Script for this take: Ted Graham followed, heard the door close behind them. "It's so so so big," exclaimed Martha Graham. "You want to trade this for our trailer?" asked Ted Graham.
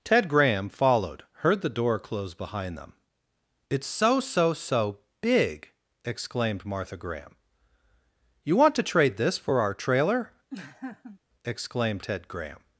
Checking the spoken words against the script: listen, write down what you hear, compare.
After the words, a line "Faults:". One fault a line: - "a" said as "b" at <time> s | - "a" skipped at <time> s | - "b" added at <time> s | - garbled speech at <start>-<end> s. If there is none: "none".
Ted Graham followed, heard the door close behind them. "It's so so so big," exclaimed Martha Graham. "You want to trade this for our trailer?" exclaimed Ted Graham.
Faults:
- "asked" said as "exclaimed" at 11.4 s